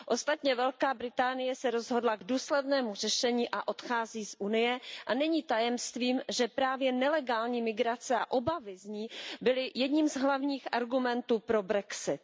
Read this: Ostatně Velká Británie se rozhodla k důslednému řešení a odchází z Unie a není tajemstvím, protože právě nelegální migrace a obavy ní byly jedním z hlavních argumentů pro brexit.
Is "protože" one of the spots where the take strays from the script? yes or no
yes